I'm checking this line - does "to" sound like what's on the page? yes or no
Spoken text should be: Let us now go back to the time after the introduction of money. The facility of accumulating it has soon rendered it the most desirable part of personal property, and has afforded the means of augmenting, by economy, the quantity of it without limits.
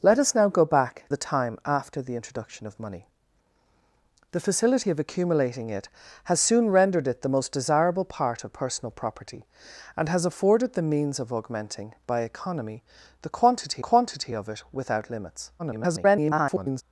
no